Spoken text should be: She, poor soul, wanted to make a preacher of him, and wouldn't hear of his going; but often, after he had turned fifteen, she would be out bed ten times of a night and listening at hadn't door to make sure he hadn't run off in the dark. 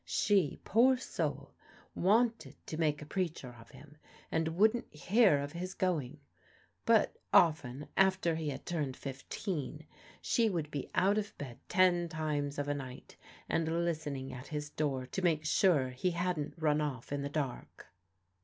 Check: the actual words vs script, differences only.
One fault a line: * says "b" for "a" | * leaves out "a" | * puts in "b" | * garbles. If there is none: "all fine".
* puts in "of"
* says "his" for "hadn't"